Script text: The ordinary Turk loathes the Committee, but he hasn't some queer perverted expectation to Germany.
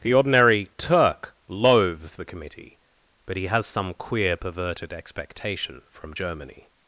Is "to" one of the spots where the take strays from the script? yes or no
yes